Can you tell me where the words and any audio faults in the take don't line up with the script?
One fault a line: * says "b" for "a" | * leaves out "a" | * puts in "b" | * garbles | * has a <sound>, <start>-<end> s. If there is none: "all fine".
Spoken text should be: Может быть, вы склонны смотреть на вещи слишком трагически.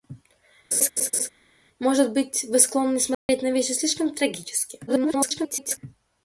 * has a laugh, 0.7-1.3 s
* has a dropout, 3.1-3.3 s
* garbles